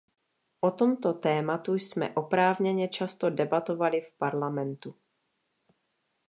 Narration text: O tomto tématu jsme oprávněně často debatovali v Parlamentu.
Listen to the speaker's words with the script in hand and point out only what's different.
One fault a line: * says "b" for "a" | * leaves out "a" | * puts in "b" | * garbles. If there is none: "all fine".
all fine